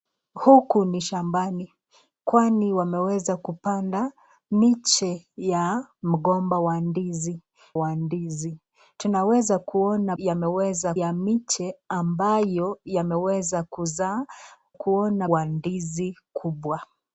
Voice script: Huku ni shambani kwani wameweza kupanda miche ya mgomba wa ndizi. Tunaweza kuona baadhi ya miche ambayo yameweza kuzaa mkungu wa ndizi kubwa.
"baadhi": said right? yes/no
no